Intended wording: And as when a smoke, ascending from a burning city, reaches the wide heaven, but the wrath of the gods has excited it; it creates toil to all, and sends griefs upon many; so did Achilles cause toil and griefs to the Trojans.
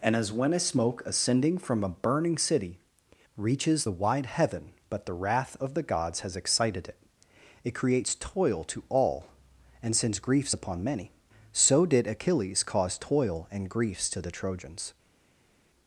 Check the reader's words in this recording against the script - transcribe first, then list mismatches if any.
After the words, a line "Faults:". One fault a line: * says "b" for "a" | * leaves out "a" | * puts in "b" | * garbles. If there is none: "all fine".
And as when a smoke, ascending from a burning city, reaches the wide heaven, but the wrath of the gods has excited it; it creates toil to all, and sends griefs upon many; so did Achilles cause toil and griefs to the Trojans.
Faults:
all fine